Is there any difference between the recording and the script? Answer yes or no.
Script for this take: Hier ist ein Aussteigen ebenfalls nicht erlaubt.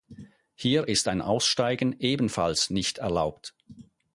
no